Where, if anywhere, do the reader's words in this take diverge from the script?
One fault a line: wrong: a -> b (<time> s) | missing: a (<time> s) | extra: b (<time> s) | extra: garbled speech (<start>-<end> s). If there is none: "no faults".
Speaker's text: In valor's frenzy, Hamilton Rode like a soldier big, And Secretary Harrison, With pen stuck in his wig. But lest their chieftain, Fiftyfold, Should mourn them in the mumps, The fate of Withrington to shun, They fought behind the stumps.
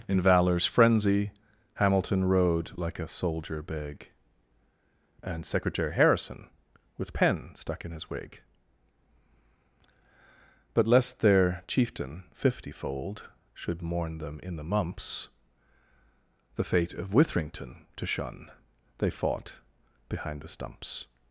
no faults